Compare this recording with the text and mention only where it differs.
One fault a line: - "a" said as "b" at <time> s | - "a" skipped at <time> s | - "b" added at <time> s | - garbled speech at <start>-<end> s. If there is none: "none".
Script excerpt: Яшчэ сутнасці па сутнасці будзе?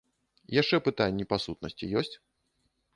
- "сутнасці" said as "пытанні" at 0.9 s
- "будзе" said as "ёсць" at 2.0 s